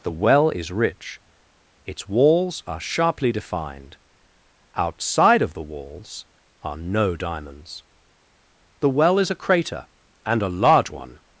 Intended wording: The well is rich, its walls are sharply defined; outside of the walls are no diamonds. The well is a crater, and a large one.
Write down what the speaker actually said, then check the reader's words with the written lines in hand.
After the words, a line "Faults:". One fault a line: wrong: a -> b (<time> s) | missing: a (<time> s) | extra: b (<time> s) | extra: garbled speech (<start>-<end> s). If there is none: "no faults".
The well is rich, its walls are sharply defined; outside of the walls are no diamonds. The well is a crater, and a large one.
Faults:
no faults